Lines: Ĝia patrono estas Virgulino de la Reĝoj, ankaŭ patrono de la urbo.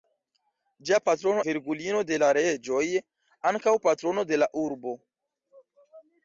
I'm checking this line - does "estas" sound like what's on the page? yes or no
no